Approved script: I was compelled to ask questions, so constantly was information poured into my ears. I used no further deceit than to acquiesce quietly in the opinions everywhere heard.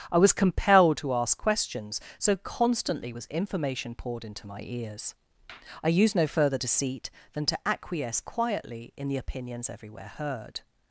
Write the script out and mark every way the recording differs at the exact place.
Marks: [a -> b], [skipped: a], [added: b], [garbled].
I was compelled to ask questions, so constantly was information poured into my ears. I used no further deceit than to acquiesce quietly in the opinions everywhere heard.